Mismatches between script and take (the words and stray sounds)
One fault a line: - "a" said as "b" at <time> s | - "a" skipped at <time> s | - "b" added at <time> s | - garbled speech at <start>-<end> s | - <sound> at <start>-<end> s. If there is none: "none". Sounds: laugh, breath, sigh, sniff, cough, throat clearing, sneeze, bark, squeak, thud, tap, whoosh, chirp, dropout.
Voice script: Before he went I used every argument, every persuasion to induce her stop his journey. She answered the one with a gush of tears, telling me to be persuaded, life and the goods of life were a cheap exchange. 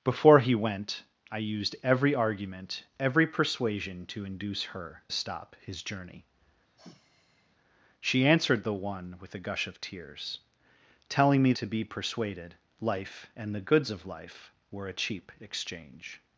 - sigh at 6.8-7.6 s